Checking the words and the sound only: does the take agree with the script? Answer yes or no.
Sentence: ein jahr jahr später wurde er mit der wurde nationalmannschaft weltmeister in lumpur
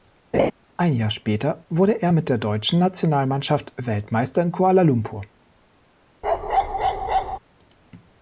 no